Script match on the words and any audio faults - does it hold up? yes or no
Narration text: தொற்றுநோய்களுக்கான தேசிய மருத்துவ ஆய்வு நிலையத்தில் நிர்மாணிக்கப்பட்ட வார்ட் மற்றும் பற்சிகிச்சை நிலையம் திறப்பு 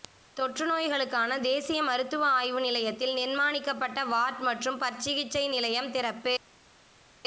yes